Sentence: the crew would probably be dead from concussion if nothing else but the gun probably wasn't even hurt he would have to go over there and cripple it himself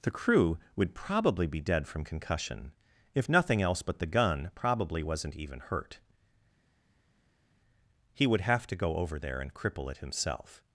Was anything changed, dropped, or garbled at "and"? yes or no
no